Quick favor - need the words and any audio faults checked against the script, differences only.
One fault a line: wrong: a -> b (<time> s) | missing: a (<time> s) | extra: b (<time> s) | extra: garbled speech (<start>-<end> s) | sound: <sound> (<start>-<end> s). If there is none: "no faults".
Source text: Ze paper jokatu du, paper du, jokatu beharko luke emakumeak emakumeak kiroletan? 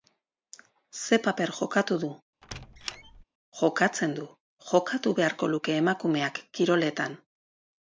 sound: squeak (2.4-3.2 s)
wrong: paper -> jokatzen (3.6 s)
missing: emakumeak (6.4 s)